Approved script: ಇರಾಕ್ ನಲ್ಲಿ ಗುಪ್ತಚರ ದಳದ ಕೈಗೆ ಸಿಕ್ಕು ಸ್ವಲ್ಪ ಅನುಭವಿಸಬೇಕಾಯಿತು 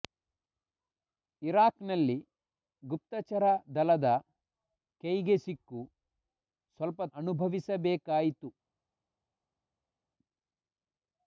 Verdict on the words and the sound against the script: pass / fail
pass